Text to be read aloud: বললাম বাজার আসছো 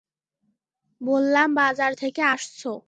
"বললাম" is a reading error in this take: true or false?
false